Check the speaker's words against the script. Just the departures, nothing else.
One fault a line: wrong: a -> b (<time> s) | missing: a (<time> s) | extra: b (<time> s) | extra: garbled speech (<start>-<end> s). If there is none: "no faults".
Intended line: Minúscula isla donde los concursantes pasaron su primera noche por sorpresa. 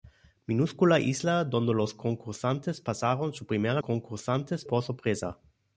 wrong: noche -> concursantes (3.8 s)